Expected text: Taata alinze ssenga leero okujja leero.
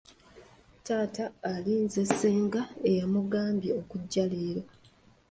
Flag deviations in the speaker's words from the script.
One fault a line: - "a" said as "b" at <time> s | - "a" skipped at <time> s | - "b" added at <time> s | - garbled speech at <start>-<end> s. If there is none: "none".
- "leero" said as "eyamugambye" at 2.9 s